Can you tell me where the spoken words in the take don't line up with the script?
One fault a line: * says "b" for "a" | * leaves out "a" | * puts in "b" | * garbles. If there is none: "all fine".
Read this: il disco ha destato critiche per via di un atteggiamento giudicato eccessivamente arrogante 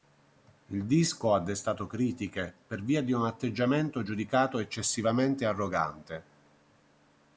all fine